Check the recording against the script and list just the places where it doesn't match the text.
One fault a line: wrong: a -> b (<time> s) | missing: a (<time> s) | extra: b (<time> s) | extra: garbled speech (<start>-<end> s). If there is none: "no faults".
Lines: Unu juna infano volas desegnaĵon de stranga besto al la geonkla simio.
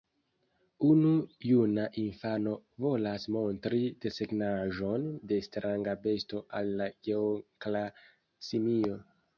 extra: montri (3.4 s)